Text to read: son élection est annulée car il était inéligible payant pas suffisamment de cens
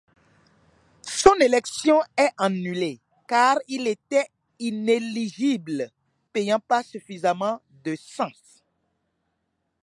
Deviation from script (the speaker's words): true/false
false